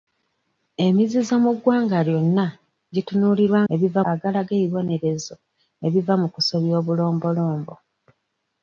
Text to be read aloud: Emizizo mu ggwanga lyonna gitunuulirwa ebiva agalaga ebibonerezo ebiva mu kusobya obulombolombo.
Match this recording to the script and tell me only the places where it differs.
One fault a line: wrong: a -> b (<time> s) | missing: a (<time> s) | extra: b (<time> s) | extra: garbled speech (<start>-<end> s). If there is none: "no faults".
no faults